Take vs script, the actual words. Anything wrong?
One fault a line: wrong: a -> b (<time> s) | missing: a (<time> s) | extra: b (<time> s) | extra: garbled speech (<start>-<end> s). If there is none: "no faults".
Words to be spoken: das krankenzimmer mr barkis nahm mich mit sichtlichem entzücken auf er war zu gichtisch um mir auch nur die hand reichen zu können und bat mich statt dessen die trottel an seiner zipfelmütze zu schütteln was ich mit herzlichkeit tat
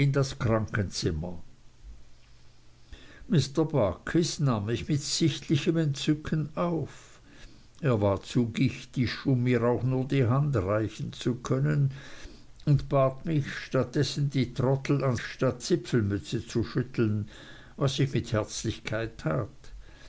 wrong: seiner -> statt (15.2 s)